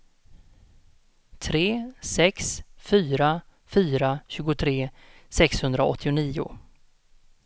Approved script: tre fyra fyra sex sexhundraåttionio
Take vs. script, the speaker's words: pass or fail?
fail